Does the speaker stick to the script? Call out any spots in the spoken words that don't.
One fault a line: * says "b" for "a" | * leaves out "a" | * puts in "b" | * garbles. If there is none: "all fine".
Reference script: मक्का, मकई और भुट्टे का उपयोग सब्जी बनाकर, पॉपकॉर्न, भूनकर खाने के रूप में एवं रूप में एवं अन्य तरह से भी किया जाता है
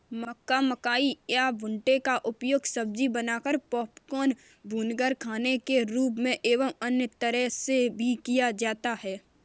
* says "या" for "और"
* leaves out "रूप में एवं"